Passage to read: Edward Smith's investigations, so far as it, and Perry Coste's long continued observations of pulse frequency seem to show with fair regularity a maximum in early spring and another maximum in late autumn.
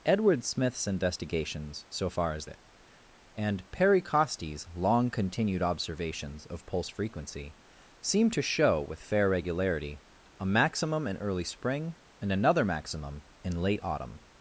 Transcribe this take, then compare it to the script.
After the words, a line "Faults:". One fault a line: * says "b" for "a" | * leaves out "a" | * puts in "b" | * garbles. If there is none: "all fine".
Edward Smith's investigations, so far as it, and Perry Coste's long continued observations of pulse frequency seem to show with fair regularity a maximum in early spring and another maximum in late autumn.
Faults:
all fine